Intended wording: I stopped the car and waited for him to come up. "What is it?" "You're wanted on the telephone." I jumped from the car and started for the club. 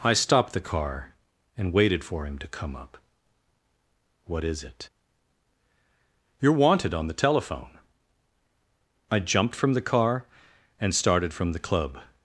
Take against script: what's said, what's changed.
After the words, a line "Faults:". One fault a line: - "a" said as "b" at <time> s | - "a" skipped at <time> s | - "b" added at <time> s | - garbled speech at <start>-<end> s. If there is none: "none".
I stopped the car and waited for him to come up. "What is it?" "You're wanted on the telephone." I jumped from the car and started from the club.
Faults:
- "for" said as "from" at 11.3 s